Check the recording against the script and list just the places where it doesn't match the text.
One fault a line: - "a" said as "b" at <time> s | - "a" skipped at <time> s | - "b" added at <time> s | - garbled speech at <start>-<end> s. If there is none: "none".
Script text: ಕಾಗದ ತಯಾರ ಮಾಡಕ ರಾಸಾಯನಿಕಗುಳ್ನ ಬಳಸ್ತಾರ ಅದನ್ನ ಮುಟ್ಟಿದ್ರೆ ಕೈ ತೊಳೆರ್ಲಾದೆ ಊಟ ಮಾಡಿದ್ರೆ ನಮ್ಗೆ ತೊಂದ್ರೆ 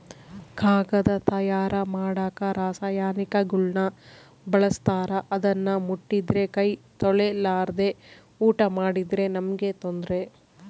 none